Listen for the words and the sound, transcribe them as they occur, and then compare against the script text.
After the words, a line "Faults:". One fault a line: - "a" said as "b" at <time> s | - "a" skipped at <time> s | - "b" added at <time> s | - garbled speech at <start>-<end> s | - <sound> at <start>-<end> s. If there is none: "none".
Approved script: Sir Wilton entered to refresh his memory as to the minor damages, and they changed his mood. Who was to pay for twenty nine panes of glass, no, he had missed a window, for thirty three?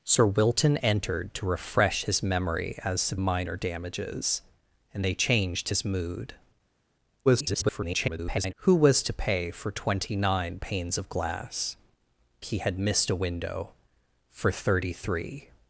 Sir Wilton entered to refresh his memory as to minor damages, and they changed his mood. [garbled] Who was to pay for twenty nine panes of glass, he had missed a window, for thirty three?
Faults:
- "the" skipped at 3.1 s
- garbled speech at 7.3-8.5 s
- "no" skipped at 11.8 s